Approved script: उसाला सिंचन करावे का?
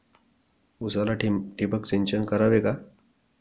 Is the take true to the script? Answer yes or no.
no